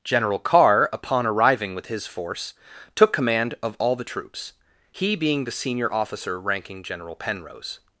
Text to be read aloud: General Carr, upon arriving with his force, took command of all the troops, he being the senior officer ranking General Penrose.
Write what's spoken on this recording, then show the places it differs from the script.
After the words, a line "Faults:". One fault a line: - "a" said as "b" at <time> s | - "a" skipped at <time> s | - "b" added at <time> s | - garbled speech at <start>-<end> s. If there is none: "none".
General Carr, upon arriving with his force, took command of all the troops, he being the senior officer ranking General Penrose.
Faults:
none